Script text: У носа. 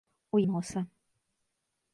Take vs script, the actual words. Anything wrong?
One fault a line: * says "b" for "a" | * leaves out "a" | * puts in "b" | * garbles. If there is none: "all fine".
all fine